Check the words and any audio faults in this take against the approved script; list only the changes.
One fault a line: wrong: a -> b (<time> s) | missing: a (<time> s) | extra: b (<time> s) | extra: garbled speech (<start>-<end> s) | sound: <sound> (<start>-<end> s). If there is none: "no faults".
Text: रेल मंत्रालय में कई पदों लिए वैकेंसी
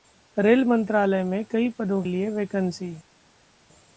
no faults